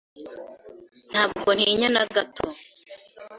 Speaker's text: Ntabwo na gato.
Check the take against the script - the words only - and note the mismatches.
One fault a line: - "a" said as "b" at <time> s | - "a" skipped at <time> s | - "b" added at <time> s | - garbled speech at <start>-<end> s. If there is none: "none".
- "ntinya" added at 1.6 s